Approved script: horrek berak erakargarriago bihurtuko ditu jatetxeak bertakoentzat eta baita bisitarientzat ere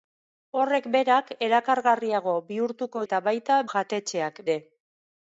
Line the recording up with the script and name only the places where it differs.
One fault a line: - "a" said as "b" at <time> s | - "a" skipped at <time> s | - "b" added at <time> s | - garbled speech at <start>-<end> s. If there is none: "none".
- "ditu jatetxeak bertakoentzat" skipped at 3.0 s
- "bisitarientzat" said as "jatetxeak" at 3.7 s